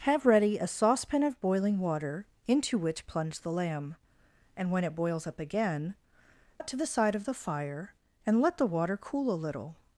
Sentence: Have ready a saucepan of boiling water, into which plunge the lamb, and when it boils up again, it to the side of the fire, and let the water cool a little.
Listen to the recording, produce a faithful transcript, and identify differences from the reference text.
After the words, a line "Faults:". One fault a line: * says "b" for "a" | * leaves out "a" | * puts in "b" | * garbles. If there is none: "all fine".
Have ready a saucepan of boiling water, into which plunge the lamb, and when it boils up again, it to the side of the fire, and let the water cool a little.
Faults:
all fine